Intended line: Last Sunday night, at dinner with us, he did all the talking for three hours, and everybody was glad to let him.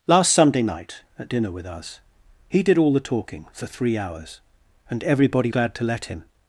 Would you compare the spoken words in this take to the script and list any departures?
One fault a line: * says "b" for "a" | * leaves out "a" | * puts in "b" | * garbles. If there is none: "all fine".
* leaves out "was"